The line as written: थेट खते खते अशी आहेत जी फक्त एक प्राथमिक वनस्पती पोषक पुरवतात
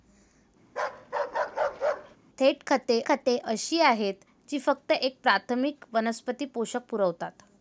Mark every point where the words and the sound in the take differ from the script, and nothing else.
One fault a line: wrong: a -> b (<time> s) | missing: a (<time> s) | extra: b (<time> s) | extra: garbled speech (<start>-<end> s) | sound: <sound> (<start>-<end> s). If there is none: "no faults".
sound: bark (0.7-2.2 s)